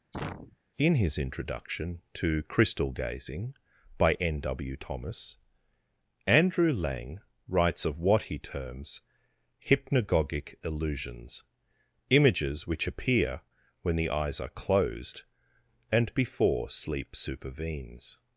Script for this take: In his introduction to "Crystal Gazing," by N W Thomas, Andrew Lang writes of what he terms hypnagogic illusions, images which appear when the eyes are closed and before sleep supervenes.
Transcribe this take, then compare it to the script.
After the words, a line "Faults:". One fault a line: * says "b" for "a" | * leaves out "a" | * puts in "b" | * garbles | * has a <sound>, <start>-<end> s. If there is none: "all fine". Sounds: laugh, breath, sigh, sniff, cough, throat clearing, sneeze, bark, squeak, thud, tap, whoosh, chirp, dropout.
In his introduction to "Crystal Gazing," by N W Thomas, Andrew Lang writes of what he terms hypnagogic illusions, images which appear when the eyes are closed and before sleep supervenes.
Faults:
* has a sneeze, 0.1-0.6 s